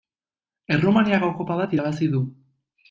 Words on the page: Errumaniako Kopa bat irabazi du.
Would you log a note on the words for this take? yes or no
no